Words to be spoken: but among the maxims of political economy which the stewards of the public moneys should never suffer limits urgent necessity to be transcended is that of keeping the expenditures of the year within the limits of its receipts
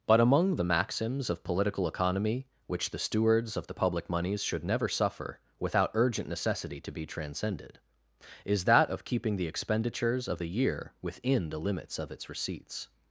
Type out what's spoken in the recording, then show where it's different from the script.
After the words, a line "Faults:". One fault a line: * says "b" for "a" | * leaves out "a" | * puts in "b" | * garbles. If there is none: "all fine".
but among the maxims of political economy which the stewards of the public moneys should never suffer without urgent necessity to be transcended is that of keeping the expenditures of the year within the limits of its receipts
Faults:
* says "without" for "limits"